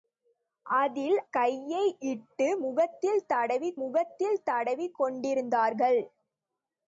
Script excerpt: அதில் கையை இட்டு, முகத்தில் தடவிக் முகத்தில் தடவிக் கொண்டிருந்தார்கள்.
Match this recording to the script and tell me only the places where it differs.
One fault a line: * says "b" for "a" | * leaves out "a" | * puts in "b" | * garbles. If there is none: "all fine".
all fine